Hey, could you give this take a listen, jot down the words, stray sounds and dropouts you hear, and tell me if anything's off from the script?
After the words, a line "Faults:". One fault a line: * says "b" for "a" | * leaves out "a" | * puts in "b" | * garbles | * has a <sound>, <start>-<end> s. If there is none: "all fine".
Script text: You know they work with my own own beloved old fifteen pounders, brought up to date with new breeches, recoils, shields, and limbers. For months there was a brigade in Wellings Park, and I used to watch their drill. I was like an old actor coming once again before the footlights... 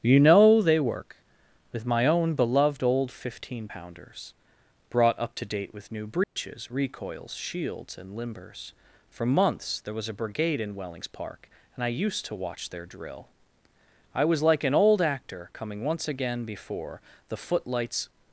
You know they work with my own beloved old fifteen pounders, brought up to date with new breeches, recoils, shields, and limbers. For months there was a brigade in Wellings Park, and I used to watch their drill. I was like an old actor coming once again before the footlights...
Faults:
* leaves out "own"
* has a dropout, 6.2-6.4 s